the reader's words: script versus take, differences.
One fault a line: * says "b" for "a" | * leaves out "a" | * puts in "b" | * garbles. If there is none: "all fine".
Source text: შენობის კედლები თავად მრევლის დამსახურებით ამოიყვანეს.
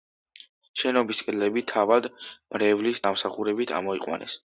all fine